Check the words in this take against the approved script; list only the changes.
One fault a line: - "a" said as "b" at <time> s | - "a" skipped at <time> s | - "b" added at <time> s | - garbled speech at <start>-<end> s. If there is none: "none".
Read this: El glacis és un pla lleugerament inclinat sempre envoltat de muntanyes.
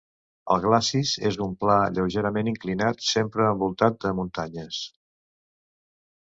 none